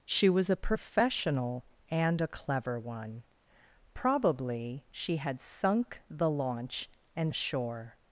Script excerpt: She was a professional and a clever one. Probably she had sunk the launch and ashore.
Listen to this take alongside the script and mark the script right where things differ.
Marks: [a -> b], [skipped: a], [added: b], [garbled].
She was a professional and a clever one. Probably she had sunk the launch and ashore.